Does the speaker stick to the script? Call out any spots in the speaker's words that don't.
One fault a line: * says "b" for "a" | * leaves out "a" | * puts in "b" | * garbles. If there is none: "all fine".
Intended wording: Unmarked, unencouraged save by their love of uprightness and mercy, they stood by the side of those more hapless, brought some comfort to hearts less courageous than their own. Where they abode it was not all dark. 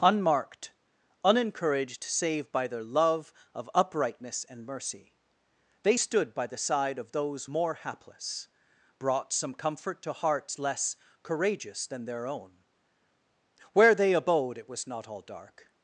all fine